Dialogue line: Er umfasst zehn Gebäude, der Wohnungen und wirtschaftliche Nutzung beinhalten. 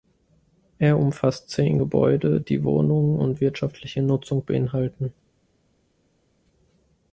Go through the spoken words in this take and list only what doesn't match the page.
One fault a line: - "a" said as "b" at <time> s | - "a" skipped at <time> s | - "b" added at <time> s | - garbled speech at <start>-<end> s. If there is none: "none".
- "der" said as "die" at 2.4 s